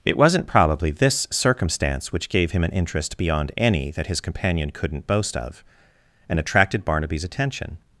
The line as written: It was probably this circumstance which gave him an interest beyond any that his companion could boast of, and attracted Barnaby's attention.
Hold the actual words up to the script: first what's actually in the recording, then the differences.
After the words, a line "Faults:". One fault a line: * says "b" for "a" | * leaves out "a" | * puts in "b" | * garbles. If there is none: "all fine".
It wasn't probably this circumstance which gave him an interest beyond any that his companion couldn't boast of, and attracted Barnaby's attention.
Faults:
* says "wasn't" for "was"
* says "couldn't" for "could"